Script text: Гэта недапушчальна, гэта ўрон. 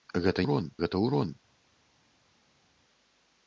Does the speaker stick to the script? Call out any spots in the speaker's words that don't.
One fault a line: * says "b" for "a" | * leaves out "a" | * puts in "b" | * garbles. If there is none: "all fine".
* says "ўрон" for "недапушчальна"